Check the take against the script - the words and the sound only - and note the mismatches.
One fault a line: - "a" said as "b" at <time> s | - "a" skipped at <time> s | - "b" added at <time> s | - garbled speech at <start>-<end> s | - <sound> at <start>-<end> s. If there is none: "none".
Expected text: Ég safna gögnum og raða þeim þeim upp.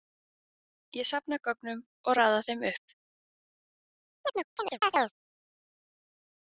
- "þeim" skipped at 2.7 s
- chirp at 4.2-5.1 s